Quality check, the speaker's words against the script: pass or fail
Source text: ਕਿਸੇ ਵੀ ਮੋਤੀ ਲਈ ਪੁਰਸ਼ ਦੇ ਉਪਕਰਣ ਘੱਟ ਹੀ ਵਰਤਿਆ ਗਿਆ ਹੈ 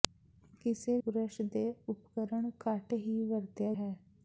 fail